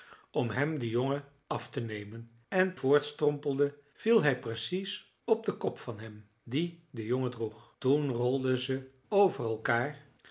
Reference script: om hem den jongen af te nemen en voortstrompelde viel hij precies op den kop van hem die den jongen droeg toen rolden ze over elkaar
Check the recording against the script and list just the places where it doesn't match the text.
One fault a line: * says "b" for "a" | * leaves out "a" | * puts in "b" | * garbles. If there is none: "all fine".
all fine